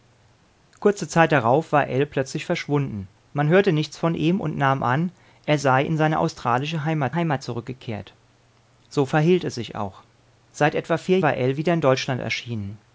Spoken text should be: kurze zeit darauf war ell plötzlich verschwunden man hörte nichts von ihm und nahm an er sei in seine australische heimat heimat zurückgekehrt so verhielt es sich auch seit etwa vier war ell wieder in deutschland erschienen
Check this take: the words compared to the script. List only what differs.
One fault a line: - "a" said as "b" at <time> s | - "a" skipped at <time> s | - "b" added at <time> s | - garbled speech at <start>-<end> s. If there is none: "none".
none